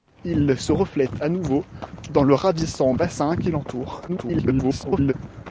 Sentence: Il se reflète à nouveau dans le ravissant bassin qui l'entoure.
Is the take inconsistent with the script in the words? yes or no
yes